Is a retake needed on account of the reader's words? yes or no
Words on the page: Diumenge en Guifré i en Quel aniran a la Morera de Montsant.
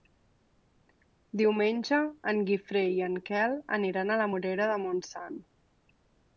no